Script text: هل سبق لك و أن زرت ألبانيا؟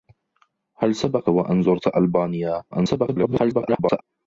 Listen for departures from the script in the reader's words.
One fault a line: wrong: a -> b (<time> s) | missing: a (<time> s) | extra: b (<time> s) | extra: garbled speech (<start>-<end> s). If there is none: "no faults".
missing: لك (1.3 s)
extra: garbled speech (2.7-4.0 s)